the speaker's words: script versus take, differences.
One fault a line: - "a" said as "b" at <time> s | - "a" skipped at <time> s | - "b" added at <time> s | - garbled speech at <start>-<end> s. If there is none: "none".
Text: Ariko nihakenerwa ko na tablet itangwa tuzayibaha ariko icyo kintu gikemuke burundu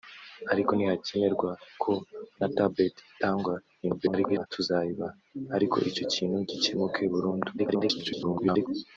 - garbled speech at 3.8-4.5 s
- garbled speech at 7.6-8.7 s